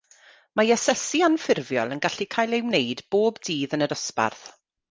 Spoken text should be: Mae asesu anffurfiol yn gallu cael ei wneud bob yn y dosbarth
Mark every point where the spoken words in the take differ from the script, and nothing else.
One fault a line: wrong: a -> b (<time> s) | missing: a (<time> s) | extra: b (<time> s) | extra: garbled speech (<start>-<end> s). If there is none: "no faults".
extra: dydd (3.5 s)